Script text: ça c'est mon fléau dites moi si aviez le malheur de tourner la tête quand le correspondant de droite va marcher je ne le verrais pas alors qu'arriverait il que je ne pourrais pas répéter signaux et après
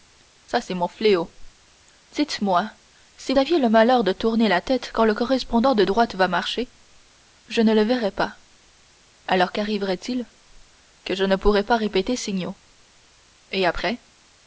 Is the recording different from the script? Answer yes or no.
no